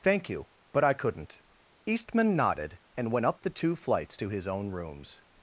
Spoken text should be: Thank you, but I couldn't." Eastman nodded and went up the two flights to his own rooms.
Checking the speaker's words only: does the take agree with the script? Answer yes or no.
yes